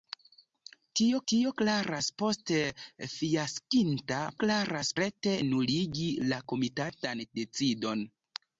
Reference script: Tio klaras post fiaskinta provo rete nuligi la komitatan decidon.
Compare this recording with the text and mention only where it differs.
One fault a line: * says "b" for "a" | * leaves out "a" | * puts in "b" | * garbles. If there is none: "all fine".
* puts in "tio"
* says "klaras" for "provo"